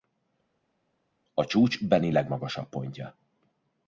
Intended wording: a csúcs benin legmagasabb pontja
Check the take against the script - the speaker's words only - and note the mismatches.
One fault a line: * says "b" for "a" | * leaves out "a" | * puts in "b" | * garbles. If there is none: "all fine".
all fine